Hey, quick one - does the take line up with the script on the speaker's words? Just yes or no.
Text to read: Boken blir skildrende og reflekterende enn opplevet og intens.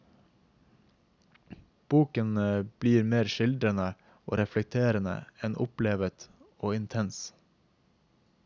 no